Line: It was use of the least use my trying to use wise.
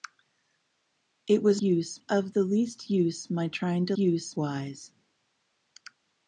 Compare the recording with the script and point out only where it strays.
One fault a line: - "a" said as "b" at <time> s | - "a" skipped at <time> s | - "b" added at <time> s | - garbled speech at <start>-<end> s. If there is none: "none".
none